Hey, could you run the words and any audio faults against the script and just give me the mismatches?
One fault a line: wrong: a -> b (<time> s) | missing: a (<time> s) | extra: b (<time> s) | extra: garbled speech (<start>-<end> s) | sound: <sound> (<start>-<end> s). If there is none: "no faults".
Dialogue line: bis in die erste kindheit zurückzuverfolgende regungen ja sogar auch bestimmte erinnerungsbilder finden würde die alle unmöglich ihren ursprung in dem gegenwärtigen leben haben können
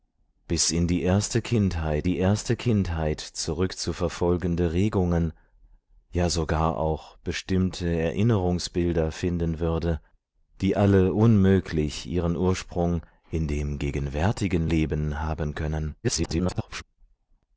extra: die erste kindheit (2.0 s)
extra: garbled speech (16.0-16.8 s)